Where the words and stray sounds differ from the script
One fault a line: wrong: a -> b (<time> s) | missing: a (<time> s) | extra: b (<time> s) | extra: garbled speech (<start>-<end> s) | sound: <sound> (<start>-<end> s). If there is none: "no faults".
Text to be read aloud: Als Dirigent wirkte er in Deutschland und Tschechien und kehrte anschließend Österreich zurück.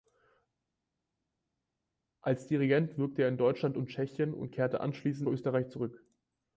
no faults